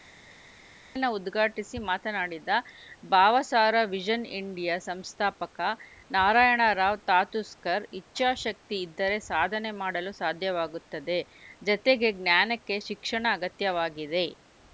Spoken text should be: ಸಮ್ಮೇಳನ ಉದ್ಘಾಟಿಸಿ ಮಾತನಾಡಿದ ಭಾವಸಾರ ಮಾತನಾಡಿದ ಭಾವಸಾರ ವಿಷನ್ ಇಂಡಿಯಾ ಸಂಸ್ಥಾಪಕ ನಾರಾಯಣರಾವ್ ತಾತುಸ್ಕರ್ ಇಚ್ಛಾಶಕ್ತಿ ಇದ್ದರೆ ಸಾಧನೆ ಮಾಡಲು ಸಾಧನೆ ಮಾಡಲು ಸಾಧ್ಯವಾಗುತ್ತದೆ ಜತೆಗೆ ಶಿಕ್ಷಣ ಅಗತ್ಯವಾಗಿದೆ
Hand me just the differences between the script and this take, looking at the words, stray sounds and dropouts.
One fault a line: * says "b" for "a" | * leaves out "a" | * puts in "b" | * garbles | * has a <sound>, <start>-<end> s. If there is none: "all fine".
* leaves out "ಮಾತನಾಡಿದ ಭಾವಸಾರ"
* leaves out "ಸಾಧನೆ ಮಾಡಲು"
* puts in "ಜ್ಞಾನಕ್ಕೆ"